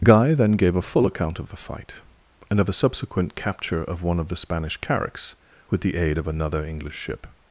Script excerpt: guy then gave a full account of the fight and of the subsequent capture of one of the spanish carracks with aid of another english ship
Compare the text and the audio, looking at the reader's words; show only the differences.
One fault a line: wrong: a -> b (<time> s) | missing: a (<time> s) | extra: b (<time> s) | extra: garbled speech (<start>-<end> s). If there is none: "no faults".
extra: the (5.8 s)